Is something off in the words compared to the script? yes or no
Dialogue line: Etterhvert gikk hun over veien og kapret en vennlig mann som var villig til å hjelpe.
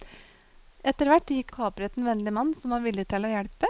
yes